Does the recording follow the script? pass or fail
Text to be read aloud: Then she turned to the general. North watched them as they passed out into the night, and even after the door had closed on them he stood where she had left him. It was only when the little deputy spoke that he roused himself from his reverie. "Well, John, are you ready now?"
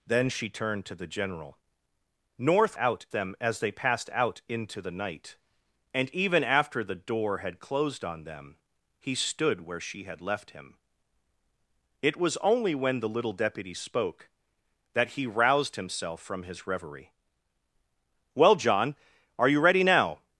fail